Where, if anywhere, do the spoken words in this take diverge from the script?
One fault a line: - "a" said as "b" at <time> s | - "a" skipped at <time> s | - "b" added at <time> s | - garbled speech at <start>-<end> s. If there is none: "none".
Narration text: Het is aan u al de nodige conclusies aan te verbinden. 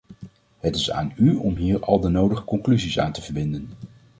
- "om hier" added at 1.4 s